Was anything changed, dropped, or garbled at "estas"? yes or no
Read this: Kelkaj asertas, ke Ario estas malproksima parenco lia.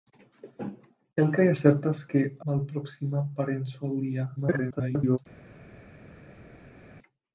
yes